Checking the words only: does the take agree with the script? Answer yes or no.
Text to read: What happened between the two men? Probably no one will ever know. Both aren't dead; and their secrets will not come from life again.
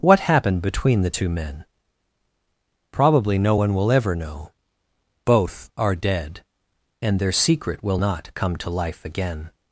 no